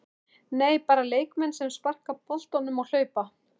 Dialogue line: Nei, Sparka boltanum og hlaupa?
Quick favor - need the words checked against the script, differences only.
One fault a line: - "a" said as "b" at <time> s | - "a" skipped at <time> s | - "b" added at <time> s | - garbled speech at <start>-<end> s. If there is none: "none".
- "Bara leikmenn sem" added at 0.9 s